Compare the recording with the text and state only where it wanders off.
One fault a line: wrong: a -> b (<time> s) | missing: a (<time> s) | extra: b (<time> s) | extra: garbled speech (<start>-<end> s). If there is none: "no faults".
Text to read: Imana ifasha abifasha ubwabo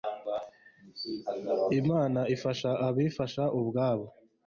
no faults